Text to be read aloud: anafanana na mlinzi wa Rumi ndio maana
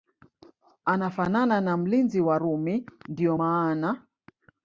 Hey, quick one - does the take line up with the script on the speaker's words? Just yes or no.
yes